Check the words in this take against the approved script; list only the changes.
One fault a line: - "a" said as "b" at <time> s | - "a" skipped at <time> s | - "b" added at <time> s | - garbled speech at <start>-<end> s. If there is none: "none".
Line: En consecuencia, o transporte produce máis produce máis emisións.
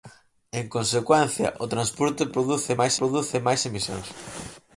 none